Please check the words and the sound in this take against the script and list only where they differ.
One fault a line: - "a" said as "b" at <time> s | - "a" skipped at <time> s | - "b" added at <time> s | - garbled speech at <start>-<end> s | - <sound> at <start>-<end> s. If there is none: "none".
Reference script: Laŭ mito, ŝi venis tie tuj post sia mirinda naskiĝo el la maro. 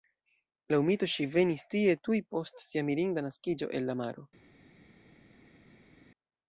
none